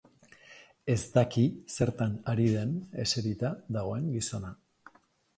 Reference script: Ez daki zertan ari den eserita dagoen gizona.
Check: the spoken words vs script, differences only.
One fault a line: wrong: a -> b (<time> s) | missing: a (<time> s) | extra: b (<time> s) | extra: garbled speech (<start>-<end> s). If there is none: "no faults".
no faults